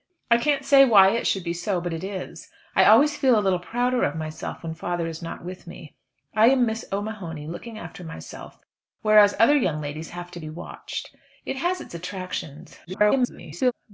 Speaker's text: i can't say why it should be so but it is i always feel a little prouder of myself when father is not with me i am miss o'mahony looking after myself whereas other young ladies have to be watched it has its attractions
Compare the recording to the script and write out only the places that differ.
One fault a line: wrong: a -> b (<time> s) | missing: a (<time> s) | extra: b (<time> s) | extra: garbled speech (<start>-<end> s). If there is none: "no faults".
extra: garbled speech (12.9-13.7 s)